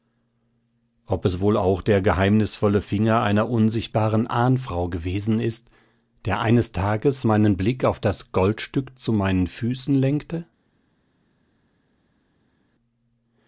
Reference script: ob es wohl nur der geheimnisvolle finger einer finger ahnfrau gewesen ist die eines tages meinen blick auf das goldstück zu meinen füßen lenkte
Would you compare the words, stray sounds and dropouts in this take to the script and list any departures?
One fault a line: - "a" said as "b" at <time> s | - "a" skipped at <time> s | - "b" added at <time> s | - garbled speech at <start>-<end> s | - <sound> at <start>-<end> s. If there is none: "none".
- "nur" said as "auch" at 1.6 s
- "finger" said as "unsichtbaren" at 3.5 s
- "die" said as "der" at 6.2 s